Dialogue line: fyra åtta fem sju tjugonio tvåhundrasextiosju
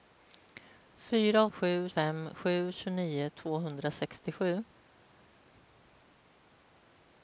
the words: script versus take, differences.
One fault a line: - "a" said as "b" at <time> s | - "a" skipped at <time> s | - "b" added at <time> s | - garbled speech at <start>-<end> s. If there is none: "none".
- "åtta" said as "sju" at 1.5 s